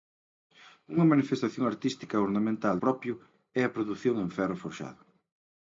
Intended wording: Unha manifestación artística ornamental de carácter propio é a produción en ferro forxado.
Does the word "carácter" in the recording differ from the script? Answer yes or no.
yes